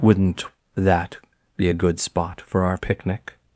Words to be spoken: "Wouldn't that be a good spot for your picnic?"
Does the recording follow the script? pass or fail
fail